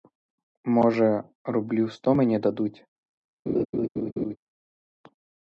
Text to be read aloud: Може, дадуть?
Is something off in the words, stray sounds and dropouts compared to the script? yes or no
yes